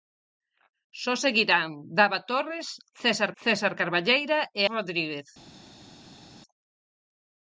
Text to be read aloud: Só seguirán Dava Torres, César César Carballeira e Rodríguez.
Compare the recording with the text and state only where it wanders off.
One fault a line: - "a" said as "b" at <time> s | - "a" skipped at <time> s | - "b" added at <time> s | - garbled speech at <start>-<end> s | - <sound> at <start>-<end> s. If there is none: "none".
none